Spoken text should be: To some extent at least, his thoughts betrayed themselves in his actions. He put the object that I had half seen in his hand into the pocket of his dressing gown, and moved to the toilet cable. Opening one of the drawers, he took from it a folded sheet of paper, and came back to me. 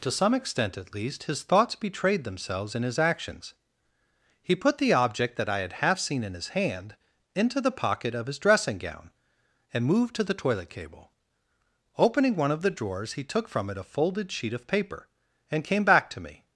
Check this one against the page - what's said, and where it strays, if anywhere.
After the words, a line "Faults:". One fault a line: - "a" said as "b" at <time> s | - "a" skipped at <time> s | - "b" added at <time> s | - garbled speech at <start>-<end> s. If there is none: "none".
To some extent at least, his thoughts betrayed themselves in his actions. He put the object that I had half seen in his hand into the pocket of his dressing gown, and moved to the toilet cable. Opening one of the drawers, he took from it a folded sheet of paper, and came back to me.
Faults:
none